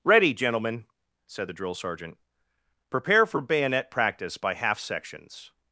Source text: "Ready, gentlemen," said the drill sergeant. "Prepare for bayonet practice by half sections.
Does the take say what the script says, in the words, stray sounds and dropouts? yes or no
yes